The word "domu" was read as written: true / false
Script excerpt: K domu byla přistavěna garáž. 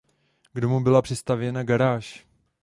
true